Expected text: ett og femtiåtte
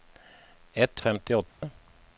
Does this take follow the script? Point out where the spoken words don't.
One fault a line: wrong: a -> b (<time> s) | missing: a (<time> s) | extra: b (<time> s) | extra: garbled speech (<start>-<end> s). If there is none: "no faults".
no faults